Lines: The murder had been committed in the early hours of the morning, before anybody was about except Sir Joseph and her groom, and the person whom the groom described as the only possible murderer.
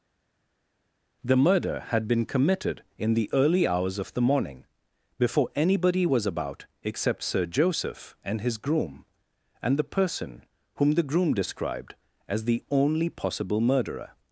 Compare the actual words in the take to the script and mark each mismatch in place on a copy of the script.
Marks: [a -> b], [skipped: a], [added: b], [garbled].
The murder had been committed in the early hours of the morning, before anybody was about except Sir Joseph and [her -> his] groom, and the person whom the groom described as the only possible murderer.